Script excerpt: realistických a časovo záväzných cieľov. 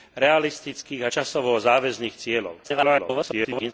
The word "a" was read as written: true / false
true